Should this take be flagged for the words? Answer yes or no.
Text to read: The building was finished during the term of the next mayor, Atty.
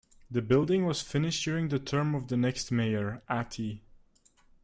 no